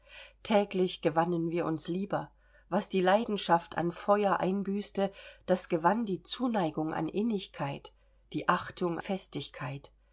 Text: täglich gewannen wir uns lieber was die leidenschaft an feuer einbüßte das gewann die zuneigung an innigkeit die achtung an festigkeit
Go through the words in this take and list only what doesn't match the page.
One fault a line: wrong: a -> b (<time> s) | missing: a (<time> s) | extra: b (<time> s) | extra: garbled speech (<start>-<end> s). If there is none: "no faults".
missing: an (9.0 s)